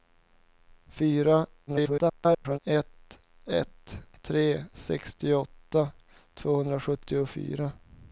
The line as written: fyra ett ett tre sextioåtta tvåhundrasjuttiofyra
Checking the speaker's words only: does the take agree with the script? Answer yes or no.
no